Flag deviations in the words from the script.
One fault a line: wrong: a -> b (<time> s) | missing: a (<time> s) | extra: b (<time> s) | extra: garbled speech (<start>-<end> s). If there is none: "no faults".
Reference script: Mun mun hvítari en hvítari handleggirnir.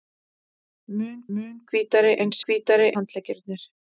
no faults